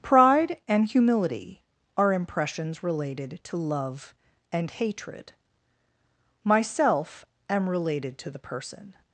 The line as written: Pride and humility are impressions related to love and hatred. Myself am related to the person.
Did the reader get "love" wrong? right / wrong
right